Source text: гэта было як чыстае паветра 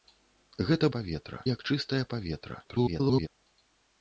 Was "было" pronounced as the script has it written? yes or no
no